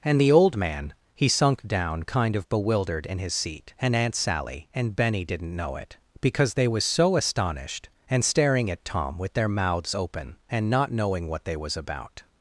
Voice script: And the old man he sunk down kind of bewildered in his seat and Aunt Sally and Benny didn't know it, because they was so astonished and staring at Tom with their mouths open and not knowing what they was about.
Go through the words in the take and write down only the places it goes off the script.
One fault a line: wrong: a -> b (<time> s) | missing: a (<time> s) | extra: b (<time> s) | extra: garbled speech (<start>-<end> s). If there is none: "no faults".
no faults